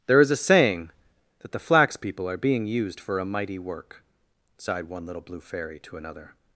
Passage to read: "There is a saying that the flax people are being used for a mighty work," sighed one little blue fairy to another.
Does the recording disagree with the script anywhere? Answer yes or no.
no